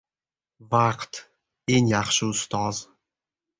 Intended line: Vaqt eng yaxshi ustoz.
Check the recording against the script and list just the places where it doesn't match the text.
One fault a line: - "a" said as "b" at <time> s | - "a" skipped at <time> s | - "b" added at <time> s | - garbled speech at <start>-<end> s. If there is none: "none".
none